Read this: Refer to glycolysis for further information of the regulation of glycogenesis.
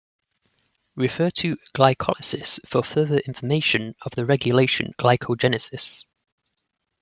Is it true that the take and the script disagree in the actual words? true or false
true